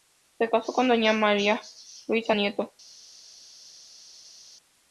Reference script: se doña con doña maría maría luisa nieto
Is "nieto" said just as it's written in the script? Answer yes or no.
yes